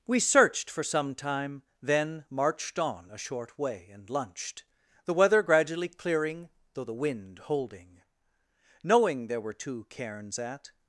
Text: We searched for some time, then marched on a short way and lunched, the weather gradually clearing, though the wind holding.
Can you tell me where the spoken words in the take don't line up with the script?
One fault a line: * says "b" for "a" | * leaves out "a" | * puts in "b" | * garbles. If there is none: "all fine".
* puts in "Knowing there were two cairns at"